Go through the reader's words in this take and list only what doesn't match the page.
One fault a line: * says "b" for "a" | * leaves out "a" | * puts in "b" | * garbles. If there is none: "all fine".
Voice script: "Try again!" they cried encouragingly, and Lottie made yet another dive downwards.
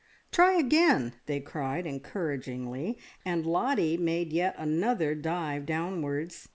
all fine